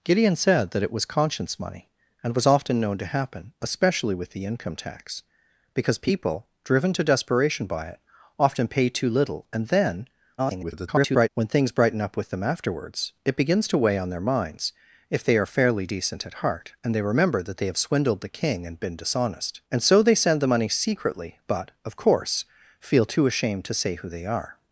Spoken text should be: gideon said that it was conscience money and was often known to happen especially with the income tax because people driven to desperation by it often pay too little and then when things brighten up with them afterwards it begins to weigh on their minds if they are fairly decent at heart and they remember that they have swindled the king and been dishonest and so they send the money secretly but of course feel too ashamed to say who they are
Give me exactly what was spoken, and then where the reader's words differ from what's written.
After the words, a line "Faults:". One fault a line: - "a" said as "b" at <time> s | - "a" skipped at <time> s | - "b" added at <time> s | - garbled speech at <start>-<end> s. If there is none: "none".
gideon said that it was conscience money and was often known to happen especially with the income tax because people driven to desperation by it often pay too little and then [garbled] when things brighten up with them afterwards it begins to weigh on their minds if they are fairly decent at heart and they remember that they have swindled the king and been dishonest and so they send the money secretly but of course feel too ashamed to say who they are
Faults:
- garbled speech at 10.4-11.3 s